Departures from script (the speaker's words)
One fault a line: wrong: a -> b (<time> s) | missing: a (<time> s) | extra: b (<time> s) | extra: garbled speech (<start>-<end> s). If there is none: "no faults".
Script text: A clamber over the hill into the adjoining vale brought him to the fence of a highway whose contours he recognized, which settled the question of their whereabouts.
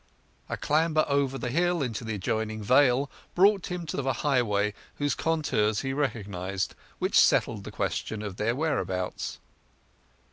missing: the fence (4.0 s)